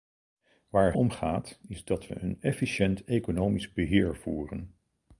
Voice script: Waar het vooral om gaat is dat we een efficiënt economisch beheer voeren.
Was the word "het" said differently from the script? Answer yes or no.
yes